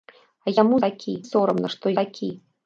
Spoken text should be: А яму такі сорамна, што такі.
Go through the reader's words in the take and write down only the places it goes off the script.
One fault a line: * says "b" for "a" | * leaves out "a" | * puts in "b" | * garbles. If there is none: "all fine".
all fine